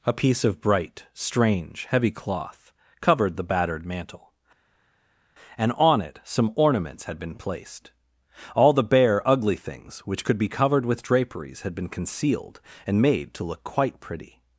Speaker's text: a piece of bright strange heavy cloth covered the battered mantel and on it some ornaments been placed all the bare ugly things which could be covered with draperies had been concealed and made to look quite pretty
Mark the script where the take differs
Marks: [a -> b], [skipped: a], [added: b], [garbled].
a piece of bright strange heavy cloth covered the battered mantel and on it some ornaments [added: had] been placed all the bare ugly things which could be covered with draperies had been concealed and made to look quite pretty